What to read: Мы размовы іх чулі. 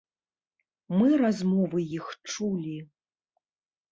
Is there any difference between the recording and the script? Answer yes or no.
no